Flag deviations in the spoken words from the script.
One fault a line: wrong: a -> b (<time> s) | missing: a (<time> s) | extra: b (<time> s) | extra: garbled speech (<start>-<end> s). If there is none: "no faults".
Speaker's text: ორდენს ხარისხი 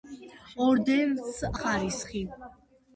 no faults